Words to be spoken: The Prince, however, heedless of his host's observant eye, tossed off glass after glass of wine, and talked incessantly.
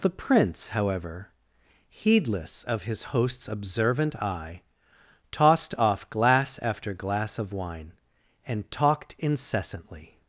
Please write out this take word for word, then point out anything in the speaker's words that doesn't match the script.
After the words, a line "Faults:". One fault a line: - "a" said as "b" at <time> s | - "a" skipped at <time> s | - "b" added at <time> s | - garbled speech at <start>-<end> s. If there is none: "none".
The Prince, however, heedless of his host's observant eye, tossed off glass after glass of wine, and talked incessantly.
Faults:
none